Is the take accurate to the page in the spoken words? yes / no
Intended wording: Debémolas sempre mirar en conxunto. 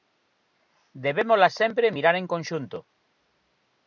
yes